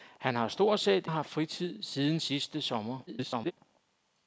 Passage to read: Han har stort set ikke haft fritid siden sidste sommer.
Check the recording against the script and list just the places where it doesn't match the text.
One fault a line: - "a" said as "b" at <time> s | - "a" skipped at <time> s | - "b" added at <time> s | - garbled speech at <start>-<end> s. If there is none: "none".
- "ikke" skipped at 1.1 s
- garbled speech at 3.1-3.5 s